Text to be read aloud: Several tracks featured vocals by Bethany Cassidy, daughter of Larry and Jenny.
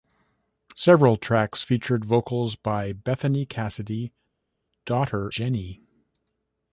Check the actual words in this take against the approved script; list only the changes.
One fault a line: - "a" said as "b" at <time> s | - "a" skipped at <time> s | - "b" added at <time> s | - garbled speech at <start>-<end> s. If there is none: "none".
- "of Larry and" skipped at 5.3 s